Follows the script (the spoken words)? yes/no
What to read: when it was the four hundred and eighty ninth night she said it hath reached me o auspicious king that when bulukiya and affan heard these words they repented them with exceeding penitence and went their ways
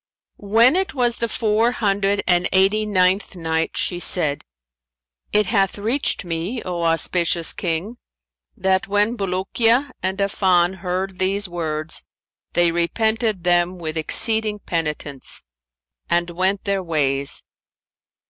yes